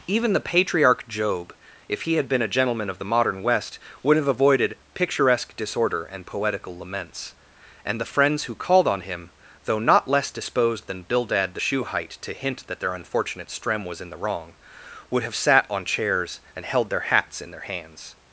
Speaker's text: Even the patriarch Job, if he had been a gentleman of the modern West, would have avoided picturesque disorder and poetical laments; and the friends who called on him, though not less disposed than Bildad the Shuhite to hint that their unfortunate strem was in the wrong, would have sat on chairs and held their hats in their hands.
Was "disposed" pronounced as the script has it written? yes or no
yes